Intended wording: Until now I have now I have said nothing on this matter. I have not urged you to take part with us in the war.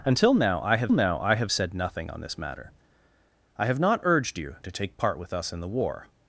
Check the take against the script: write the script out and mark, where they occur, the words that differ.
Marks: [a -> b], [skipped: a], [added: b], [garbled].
Until now I have now I have said nothing on this matter. I have not urged you to take part with us in the war.